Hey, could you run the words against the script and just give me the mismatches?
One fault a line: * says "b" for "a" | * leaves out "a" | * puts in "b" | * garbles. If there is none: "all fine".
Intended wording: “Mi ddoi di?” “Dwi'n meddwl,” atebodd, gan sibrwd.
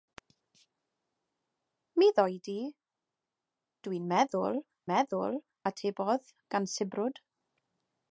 * puts in "meddwl"